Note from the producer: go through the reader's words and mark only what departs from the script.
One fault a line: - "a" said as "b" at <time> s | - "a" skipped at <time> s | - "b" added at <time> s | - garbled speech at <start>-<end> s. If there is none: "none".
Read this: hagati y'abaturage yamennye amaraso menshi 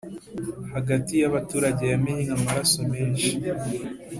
none